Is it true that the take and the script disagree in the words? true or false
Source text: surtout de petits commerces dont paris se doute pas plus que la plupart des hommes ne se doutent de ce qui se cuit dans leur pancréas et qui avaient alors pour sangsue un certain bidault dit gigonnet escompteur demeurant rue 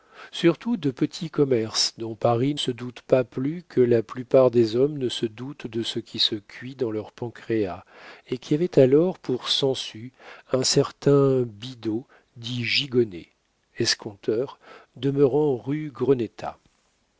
false